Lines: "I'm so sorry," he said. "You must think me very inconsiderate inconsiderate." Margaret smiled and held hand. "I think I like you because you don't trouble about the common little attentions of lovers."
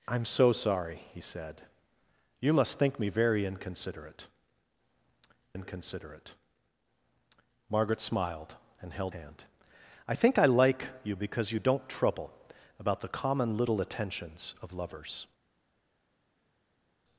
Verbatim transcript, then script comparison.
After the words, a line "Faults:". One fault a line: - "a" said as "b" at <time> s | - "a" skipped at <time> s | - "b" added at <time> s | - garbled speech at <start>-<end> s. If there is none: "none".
"I'm so sorry," he said. "You must think me very inconsiderate inconsiderate." Margaret smiled and held hand. "I think I like you because you don't trouble about the common little attentions of lovers."
Faults:
none